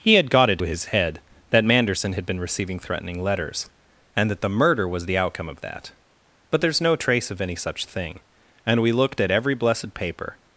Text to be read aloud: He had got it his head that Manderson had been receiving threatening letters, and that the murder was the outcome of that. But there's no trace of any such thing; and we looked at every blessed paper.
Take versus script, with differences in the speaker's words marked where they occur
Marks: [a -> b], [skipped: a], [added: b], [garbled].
He had got it his head that Manderson had been receiving threatening letters, and that the murder was the outcome of that. But there's no trace of any such thing; and we looked at every blessed paper.